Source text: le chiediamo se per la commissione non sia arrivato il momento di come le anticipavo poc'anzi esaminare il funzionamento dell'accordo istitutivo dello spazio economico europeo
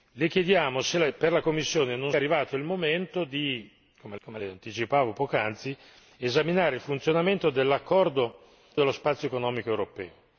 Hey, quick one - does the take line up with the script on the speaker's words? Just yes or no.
no